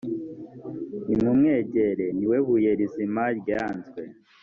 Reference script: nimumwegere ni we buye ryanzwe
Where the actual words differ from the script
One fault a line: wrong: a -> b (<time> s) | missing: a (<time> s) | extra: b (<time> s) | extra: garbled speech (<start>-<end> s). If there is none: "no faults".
extra: rizima (2.8 s)